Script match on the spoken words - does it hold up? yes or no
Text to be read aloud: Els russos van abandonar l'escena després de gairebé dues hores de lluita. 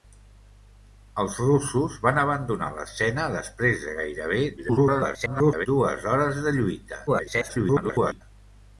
no